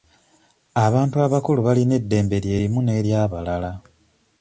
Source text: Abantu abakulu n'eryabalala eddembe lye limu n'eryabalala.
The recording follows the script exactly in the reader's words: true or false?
false